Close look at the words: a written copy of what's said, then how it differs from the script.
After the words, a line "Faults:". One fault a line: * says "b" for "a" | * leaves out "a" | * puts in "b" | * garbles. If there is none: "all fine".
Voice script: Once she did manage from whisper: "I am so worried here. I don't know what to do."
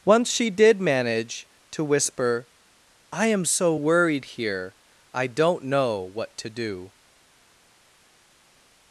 Once she did manage to whisper: "I am so worried here. I don't know what to do."
Faults:
* says "to" for "from"